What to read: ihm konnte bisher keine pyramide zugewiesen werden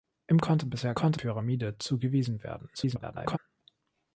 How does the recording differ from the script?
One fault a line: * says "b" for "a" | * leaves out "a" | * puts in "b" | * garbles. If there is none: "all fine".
* says "konnte" for "keine"
* garbles